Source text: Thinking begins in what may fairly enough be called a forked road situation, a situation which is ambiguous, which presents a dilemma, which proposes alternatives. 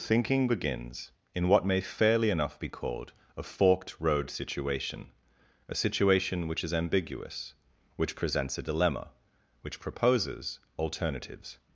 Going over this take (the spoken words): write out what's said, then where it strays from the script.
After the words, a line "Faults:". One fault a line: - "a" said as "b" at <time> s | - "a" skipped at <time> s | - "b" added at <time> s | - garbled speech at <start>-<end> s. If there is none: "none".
Thinking begins in what may fairly enough be called a forked road situation, a situation which is ambiguous, which presents a dilemma, which proposes alternatives.
Faults:
none